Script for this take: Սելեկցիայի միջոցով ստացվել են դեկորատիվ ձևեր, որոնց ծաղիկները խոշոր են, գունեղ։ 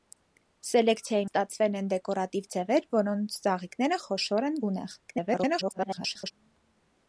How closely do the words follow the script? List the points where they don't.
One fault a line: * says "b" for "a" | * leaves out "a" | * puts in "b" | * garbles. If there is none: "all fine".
* leaves out "միջոցով"
* garbles